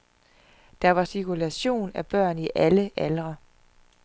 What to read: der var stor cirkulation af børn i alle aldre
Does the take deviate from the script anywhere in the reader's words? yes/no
yes